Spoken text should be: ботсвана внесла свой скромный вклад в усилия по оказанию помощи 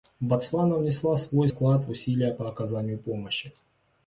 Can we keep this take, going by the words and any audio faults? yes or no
no